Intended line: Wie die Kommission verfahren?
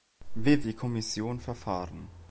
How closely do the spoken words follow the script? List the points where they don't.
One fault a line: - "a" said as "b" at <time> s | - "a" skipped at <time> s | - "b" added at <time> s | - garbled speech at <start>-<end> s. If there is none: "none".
none